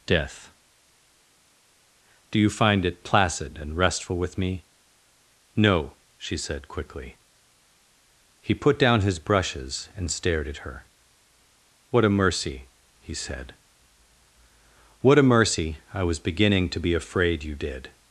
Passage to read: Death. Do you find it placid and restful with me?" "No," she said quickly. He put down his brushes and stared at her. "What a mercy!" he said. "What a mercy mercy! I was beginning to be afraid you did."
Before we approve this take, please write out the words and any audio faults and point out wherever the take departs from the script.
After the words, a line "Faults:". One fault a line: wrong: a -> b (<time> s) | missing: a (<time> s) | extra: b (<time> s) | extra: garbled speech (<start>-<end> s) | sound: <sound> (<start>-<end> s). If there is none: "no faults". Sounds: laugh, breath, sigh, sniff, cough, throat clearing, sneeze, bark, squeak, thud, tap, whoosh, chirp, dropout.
Death. Do you find it placid and restful with me?" "No," she said quickly. He put down his brushes and stared at her. "What a mercy!" he said. "What a mercy! I was beginning to be afraid you did."
Faults:
missing: mercy (15.8 s)